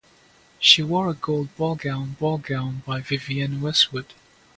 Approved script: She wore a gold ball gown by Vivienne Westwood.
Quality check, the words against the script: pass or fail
fail